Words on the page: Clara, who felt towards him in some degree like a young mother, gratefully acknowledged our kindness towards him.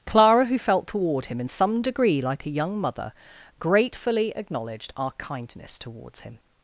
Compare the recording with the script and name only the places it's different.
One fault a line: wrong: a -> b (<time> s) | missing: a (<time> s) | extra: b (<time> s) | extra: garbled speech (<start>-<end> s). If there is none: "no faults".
wrong: towards -> toward (0.9 s)